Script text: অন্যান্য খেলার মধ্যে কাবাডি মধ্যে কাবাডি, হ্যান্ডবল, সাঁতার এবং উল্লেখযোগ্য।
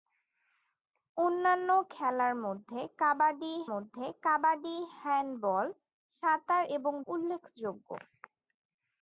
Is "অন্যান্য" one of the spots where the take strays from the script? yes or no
no